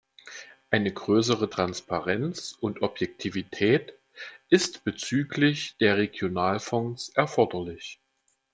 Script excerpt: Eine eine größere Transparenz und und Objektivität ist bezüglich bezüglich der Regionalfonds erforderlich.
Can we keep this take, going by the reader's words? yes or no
no